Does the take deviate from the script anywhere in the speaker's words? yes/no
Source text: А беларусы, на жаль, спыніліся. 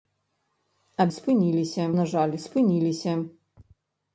yes